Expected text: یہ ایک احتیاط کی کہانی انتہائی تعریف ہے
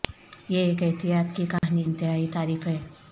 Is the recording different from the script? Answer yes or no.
no